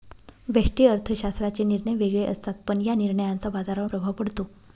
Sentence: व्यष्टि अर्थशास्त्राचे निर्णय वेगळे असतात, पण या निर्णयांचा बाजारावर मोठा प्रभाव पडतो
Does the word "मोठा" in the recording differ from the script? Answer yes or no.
yes